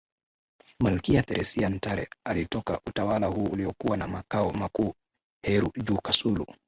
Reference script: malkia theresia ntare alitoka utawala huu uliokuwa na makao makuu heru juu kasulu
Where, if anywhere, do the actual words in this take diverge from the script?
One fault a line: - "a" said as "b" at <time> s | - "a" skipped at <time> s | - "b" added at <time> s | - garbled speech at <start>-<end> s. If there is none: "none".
none